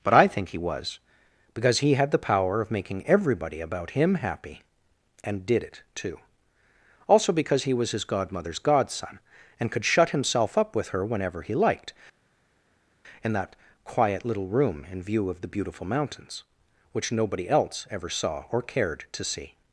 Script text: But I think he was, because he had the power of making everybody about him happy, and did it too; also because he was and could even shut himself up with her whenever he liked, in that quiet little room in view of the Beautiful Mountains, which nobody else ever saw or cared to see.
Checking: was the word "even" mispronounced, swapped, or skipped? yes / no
yes